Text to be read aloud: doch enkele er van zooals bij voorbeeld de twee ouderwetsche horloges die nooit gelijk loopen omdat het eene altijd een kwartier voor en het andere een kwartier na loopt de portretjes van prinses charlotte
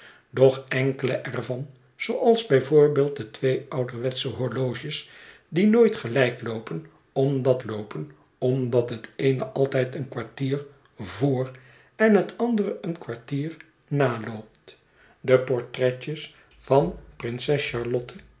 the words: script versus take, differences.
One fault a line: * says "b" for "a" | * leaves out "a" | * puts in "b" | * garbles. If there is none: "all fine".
* puts in "loopen omdat"